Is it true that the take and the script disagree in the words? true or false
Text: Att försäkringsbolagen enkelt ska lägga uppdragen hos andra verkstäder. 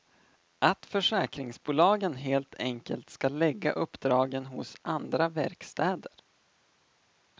true